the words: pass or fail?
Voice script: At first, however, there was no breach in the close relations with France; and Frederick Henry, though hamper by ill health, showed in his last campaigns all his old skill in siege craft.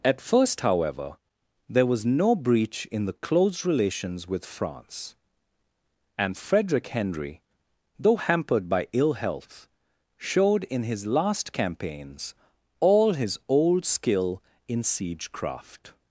fail